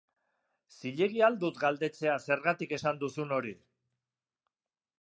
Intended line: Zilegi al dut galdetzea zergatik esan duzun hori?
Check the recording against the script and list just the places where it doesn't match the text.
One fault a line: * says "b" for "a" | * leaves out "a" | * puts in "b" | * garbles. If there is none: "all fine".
all fine